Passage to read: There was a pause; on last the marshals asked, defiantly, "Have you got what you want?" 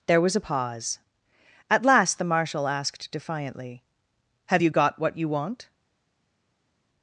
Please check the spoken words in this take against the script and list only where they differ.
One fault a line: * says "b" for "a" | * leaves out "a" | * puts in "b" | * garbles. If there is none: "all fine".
* says "at" for "on"
* says "marshal" for "marshals"